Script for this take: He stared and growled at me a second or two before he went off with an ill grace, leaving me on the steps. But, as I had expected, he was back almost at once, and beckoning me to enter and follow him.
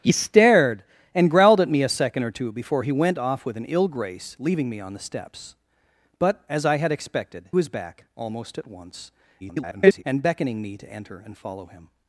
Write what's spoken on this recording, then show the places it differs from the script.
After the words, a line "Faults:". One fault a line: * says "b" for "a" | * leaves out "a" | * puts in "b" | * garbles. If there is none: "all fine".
He stared and growled at me a second or two before he went off with an ill grace, leaving me on the steps. But, as I had expected, was back almost at once, [garbled] and beckoning me to enter and follow him.
Faults:
* leaves out "he"
* garbles